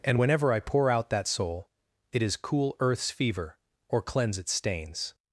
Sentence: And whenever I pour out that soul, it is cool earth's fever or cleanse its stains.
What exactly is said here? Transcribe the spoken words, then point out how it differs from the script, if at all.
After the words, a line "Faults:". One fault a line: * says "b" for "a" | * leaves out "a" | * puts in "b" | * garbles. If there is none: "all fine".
And whenever I pour out that soul, it is cool earth's fever or cleanse its stains.
Faults:
all fine